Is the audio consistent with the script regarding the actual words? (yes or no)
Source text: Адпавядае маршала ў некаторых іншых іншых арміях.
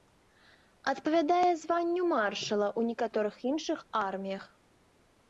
no